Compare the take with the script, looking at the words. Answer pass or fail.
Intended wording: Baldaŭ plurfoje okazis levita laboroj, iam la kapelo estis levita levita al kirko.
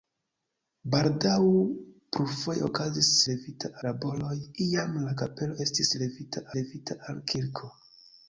pass